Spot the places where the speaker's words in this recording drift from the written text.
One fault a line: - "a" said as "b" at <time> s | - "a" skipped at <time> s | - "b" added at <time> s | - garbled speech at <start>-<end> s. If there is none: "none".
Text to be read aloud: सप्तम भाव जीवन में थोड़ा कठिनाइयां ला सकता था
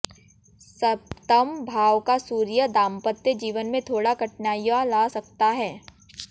- "का सूर्य दांपत्य" added at 2.0 s
- "था" said as "है" at 5.5 s